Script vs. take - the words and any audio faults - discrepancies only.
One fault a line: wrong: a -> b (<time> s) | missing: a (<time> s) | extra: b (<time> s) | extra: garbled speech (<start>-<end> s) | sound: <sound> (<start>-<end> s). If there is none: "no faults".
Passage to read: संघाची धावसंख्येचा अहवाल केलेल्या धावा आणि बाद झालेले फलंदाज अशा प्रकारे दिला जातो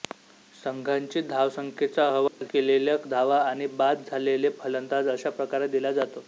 sound: dropout (2.3-2.4 s)